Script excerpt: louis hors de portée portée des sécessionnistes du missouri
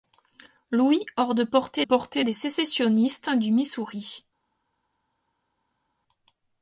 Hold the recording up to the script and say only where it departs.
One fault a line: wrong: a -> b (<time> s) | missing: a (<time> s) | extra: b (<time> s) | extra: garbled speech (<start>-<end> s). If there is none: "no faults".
no faults